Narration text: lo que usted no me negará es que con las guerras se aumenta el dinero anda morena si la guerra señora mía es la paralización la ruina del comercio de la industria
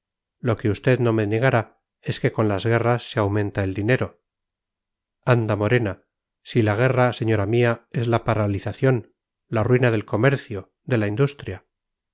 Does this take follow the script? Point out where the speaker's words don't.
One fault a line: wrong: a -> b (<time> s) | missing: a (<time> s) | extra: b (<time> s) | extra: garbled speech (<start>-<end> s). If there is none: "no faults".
no faults